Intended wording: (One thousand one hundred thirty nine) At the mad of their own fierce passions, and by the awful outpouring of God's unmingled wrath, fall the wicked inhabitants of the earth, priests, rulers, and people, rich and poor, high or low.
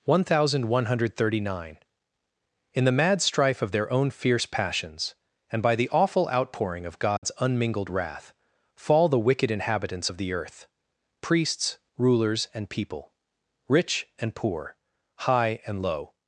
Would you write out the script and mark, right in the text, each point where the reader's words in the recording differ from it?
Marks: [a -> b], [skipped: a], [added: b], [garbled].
(One thousand one hundred thirty nine) [At -> In] the mad [added: strife] of their own fierce passions, and by the awful outpouring of God's unmingled wrath, fall the wicked inhabitants of the earth, priests, rulers, and people, rich and poor, high [or -> and] low.